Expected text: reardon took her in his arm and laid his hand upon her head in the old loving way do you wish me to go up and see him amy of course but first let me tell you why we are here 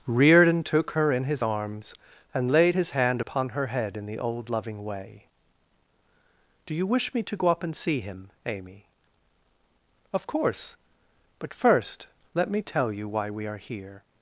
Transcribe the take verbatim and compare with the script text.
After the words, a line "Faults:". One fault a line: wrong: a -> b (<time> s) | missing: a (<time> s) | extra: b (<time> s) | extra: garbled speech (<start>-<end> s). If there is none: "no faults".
reardon took her in his arms and laid his hand upon her head in the old loving way do you wish me to go up and see him amy of course but first let me tell you why we are here
Faults:
wrong: arm -> arms (1.4 s)